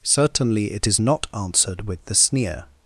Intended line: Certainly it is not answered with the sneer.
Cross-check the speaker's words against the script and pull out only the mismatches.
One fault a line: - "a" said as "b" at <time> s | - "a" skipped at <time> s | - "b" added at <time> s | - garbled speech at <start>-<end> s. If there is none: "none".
none